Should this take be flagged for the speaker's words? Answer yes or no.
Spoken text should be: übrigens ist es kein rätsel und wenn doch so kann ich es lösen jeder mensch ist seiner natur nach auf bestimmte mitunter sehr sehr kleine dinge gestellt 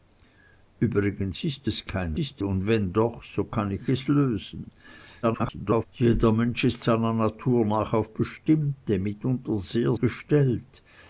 yes